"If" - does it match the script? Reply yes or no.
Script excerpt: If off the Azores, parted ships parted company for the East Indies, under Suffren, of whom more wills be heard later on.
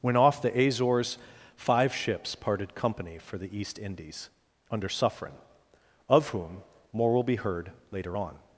no